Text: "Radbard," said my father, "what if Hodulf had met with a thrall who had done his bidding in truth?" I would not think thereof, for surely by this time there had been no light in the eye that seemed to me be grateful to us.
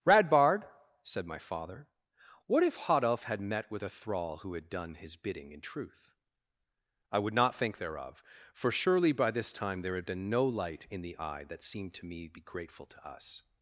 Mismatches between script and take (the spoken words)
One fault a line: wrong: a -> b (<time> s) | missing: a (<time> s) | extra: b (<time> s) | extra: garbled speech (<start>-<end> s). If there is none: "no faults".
no faults